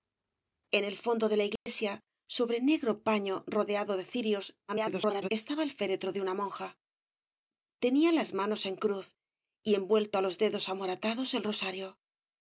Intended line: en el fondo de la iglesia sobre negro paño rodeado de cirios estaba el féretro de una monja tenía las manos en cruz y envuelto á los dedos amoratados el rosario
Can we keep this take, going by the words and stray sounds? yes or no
no